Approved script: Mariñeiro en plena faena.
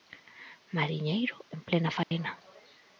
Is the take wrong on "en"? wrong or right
right